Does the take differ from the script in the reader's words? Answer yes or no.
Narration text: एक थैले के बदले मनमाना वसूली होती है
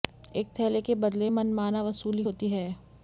no